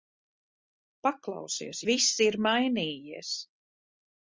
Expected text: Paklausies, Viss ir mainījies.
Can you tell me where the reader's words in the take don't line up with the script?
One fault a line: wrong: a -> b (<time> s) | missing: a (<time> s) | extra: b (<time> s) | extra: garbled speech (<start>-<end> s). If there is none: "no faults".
no faults